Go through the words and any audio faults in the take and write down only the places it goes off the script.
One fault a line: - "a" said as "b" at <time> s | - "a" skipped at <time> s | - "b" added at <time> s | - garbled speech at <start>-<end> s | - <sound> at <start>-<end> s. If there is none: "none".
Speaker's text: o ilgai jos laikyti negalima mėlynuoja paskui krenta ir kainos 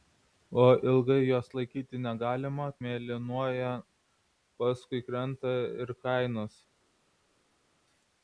none